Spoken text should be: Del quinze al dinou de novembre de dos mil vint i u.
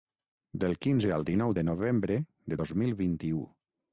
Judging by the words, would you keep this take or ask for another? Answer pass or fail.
pass